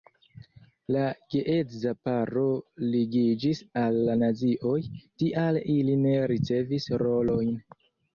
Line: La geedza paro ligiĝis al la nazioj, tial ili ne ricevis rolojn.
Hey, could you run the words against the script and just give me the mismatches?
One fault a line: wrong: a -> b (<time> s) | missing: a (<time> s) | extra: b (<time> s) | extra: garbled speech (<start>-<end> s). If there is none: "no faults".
no faults